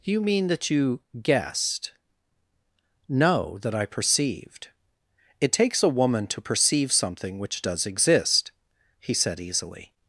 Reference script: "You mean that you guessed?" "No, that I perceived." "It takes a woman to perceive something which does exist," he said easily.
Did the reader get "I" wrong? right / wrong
right